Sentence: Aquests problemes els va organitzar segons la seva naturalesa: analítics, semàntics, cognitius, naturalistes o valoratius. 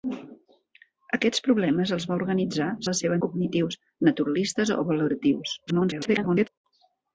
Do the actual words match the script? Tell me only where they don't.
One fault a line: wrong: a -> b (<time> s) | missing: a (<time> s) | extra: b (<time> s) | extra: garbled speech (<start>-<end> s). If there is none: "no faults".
missing: segons (2.7 s)
missing: naturalesa analítics semàntics (3.2 s)
extra: garbled speech (5.7-6.5 s)